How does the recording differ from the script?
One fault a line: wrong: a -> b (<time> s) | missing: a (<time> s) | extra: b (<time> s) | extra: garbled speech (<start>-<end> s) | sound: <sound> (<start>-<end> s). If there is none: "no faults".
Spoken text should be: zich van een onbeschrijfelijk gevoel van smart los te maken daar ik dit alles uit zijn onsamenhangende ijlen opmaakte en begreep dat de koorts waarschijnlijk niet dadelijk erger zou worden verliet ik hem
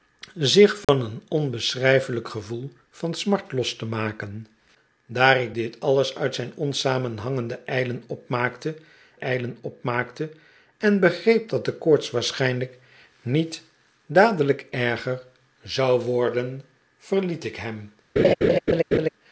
sound: dropout (0.8-0.9 s)
extra: ijlen opmaakte (9.2 s)
sound: laugh (18.2-19.1 s)